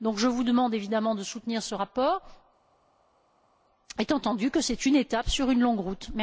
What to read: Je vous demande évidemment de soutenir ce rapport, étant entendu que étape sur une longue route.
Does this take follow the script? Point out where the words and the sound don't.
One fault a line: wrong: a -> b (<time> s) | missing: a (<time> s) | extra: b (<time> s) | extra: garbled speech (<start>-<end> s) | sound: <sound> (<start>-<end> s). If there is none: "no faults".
extra: c'est une (4.6 s)